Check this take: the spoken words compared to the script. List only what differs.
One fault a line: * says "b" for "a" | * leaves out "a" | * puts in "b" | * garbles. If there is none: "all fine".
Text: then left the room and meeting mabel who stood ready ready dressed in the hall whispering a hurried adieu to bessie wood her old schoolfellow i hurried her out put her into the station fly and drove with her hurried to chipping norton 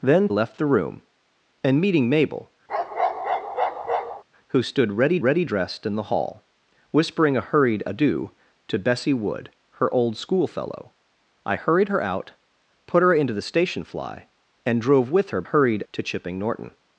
all fine